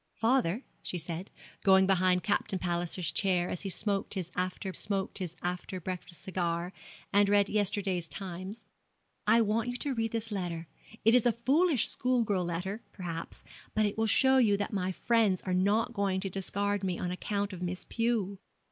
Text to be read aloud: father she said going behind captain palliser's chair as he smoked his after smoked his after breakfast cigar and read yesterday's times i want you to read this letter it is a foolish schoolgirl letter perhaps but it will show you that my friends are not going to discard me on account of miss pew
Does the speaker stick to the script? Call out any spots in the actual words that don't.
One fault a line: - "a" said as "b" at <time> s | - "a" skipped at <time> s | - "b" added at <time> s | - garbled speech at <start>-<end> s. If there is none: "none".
none